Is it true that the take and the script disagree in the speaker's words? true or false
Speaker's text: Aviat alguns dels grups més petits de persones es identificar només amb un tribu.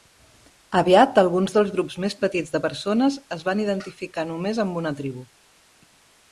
true